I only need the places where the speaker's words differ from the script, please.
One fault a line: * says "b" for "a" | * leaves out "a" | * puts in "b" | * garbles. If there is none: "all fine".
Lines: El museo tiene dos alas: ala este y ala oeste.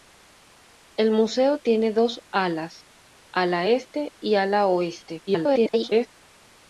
* garbles